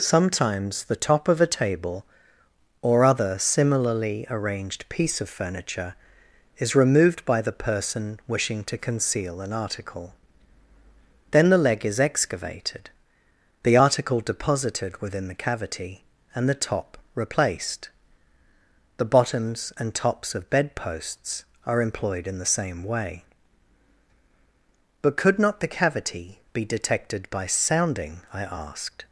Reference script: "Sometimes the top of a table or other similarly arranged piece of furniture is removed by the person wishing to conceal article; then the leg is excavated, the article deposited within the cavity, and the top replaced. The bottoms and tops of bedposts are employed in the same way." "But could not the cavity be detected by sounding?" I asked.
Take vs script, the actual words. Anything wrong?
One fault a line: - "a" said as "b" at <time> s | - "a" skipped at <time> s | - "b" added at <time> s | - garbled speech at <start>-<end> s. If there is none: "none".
- "an" added at 9.4 s